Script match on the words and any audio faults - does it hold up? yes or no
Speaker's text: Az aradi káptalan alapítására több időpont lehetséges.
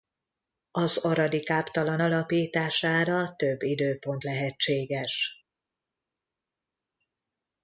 yes